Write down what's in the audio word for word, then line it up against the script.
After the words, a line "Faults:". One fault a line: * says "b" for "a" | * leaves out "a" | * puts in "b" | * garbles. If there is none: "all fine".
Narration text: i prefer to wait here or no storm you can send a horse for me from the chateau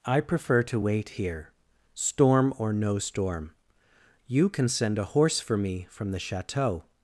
i prefer to wait here storm or no storm you can send a horse for me from the chateau
Faults:
* puts in "storm"